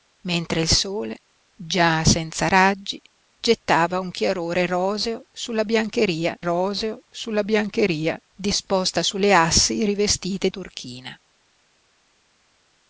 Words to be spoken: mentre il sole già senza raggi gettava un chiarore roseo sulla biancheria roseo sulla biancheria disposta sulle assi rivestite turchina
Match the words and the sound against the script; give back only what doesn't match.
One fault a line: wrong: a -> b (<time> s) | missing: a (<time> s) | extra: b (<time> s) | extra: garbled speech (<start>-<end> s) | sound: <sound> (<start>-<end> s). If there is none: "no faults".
no faults